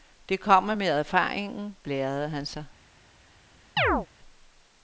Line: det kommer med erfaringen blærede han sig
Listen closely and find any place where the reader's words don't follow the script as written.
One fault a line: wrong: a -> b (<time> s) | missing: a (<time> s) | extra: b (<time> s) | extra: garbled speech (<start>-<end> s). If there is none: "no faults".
no faults